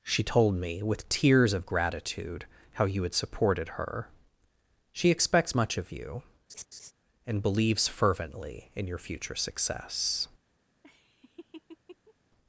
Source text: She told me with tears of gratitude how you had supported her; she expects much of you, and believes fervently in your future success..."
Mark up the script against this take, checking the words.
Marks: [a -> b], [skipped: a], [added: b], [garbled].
She told me with tears of gratitude how you had supported her; she expects much of you, and believes fervently in your future success..."